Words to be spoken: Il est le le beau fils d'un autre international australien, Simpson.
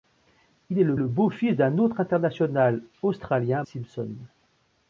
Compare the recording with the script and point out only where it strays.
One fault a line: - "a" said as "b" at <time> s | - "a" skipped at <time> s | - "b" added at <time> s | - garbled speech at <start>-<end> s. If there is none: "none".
none